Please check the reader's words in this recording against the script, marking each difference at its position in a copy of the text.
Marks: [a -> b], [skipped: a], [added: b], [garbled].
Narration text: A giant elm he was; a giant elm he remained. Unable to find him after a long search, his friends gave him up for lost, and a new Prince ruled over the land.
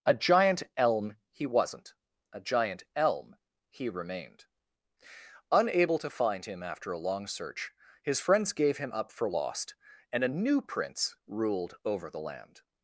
A giant elm he [was; -> wasn't] a giant elm he remained. Unable to find him after a long search, his friends gave him up for lost, and a new Prince ruled over the land.